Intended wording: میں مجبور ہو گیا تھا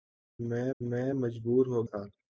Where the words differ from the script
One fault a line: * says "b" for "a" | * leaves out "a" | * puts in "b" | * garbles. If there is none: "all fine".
* puts in "میں"
* leaves out "گیا"